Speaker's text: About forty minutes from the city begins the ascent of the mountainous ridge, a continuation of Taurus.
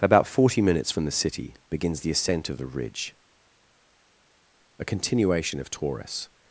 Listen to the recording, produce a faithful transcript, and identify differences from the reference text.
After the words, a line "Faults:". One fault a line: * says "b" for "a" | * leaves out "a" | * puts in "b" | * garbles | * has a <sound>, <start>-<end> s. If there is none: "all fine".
About forty minutes from the city begins the ascent of the ridge, a continuation of Taurus.
Faults:
* leaves out "mountainous"